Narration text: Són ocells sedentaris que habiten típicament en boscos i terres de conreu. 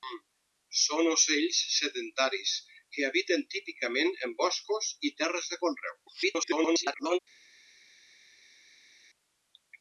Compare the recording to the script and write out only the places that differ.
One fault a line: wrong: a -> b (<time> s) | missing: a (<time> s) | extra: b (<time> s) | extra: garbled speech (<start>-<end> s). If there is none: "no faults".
extra: garbled speech (6.1-7.2 s)